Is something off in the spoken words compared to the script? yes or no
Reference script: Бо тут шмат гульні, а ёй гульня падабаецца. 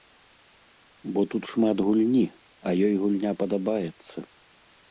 no